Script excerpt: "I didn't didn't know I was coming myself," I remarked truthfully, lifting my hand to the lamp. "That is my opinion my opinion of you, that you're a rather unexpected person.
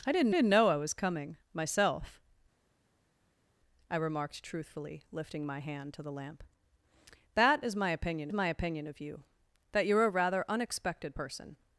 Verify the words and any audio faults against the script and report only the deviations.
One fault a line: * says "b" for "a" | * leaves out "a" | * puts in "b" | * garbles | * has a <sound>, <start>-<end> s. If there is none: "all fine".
all fine